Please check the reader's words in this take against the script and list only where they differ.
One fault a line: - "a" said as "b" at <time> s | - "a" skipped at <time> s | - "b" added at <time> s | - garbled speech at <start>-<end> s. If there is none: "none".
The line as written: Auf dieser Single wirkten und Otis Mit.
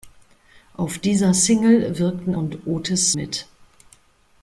none